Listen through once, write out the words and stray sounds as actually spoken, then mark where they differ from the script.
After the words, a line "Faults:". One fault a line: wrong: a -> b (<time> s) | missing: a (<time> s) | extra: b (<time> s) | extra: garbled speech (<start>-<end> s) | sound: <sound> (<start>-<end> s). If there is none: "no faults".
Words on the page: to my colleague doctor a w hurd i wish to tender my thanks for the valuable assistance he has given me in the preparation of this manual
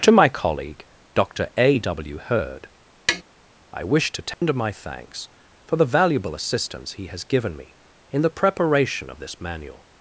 to my colleague doctor a w hurd i wish to tender my thanks for the valuable assistance he has given me in the preparation of this manual
Faults:
sound: tap (3.1-3.2 s)
sound: dropout (4.3-4.4 s)